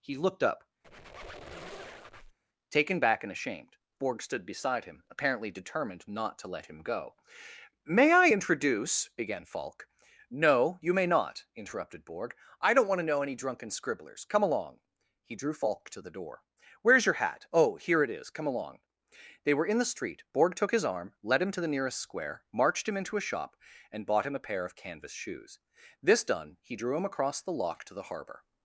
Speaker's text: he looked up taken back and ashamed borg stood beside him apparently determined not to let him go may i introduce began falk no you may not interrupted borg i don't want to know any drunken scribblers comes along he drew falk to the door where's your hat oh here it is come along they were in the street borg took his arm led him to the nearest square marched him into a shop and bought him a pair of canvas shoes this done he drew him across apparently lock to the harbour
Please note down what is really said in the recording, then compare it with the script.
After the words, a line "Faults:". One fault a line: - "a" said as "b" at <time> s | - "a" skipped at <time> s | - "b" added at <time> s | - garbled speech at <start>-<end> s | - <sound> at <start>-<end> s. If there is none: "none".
he looked up taken back and ashamed borg stood beside him apparently determined not to let him go may i introduce began falk no you may not interrupted borg i don't want to know any drunken scribblers come along he drew falk to the door where's your hat oh here it is come along they were in the street borg took his arm led him to the nearest square marched him into a shop and bought him a pair of canvas shoes this done he drew him across the lock to the harbour
Faults:
- squeak at 0.8-2.4 s
- "comes" said as "come" at 14.2 s
- "apparently" said as "the" at 27.4 s